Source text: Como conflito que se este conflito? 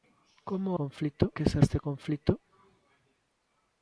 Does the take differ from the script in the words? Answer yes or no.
no